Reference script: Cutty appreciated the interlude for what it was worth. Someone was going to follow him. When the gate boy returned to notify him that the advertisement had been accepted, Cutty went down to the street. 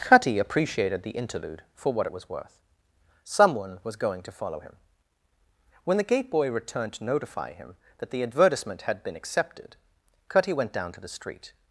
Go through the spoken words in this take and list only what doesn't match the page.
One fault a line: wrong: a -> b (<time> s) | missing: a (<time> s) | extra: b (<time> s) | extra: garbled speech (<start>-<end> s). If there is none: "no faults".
no faults